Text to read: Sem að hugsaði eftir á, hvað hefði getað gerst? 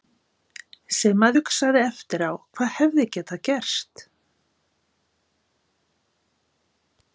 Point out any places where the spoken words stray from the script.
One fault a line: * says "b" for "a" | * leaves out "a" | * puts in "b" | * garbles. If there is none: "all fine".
all fine